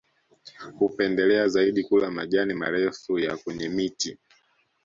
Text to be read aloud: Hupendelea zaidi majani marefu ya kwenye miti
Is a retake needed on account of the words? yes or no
yes